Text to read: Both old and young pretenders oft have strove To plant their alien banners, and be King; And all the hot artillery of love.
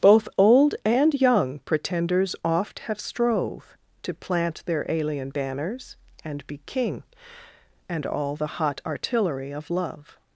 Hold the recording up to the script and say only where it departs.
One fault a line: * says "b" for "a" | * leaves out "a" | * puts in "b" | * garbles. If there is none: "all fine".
all fine